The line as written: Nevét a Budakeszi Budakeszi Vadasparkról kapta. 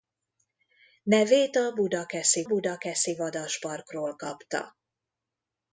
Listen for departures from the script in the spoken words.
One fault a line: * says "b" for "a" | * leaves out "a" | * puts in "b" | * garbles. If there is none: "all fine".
all fine